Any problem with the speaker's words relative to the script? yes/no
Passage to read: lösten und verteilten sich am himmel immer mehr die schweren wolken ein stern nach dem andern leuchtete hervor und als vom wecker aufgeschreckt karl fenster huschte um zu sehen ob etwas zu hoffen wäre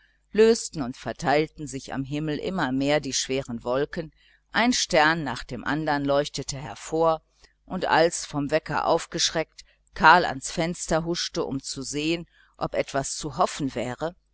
yes